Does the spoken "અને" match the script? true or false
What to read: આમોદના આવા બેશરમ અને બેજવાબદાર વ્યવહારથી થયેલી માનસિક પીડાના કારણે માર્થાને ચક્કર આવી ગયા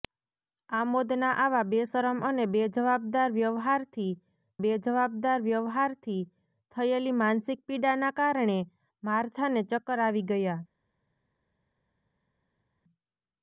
true